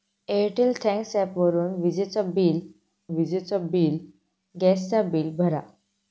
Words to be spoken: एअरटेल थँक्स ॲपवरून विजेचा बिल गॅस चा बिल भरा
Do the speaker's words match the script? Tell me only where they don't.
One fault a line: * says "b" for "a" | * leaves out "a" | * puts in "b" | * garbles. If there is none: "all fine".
* puts in "विजेचा बिल"